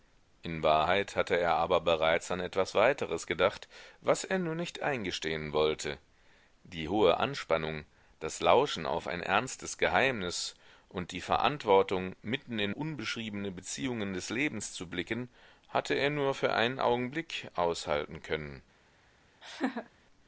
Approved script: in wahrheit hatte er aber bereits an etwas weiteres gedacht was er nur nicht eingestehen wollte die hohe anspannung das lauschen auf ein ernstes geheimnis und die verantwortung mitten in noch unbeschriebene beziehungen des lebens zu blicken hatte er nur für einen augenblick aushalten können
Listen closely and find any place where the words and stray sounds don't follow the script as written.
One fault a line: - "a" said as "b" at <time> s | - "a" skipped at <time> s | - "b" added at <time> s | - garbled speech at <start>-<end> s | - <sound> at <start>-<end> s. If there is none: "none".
- "noch" skipped at 12.7 s
- laugh at 19.4-19.9 s